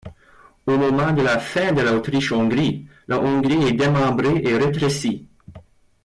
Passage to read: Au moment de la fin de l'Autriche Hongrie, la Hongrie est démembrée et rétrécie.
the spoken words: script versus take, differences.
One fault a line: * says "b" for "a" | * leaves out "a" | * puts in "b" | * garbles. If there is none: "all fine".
all fine